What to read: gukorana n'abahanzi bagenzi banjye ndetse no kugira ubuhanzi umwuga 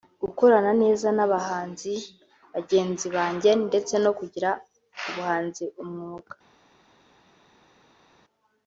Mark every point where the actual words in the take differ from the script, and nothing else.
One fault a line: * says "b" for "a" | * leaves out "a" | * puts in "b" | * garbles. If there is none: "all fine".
* puts in "neza"